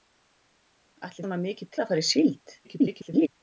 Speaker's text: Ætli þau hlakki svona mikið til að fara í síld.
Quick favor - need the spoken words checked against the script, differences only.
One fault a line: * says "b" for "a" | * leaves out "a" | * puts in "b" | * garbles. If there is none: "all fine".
* leaves out "þau hlakki"
* leaves out "til"
* garbles